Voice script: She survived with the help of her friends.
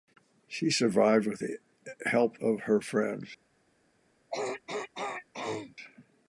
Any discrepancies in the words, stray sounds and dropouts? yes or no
yes